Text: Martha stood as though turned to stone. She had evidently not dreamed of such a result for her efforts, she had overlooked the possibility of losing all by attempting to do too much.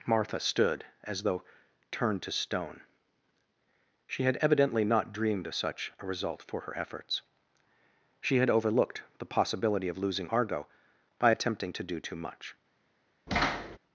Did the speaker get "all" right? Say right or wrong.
wrong